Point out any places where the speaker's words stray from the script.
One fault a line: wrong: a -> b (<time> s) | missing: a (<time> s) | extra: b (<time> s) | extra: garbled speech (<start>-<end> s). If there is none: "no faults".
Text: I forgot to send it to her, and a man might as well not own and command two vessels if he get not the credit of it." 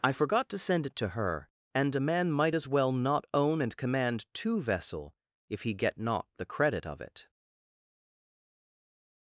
wrong: vessels -> vessel (4.6 s)